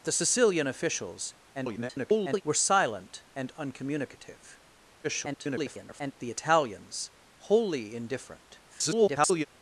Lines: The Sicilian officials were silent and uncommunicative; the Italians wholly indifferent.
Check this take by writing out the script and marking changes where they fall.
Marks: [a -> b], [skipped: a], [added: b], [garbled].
The Sicilian officials [garbled] were silent and uncommunicative; [garbled] the Italians wholly indifferent. [garbled]